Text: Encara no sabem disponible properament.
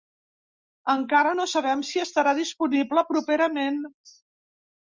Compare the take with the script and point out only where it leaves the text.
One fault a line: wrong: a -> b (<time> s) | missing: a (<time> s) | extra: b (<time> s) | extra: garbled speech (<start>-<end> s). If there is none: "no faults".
extra: si estarà (1.9 s)